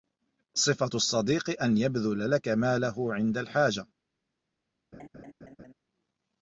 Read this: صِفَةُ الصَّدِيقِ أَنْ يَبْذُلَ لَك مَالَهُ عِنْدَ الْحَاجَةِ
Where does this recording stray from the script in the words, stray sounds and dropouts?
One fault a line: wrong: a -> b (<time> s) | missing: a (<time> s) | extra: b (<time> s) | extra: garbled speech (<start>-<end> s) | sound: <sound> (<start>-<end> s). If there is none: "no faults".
sound: laugh (4.9-5.7 s)